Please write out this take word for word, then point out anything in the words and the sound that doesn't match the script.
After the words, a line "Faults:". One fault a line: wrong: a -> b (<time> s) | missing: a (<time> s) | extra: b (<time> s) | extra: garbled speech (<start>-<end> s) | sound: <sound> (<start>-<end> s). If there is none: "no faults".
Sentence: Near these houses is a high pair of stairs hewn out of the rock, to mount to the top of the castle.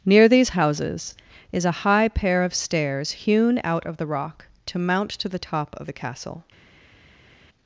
Near these houses is a high pair of stairs hewn out of the rock, to mount to the top of the castle.
Faults:
no faults